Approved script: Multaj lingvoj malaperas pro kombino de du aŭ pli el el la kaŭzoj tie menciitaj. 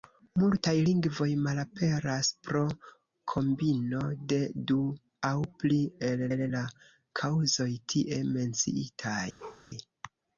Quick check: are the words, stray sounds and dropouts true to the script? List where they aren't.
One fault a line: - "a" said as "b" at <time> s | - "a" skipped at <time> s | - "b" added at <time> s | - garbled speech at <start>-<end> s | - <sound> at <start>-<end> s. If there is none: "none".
- bark at 9.4-9.7 s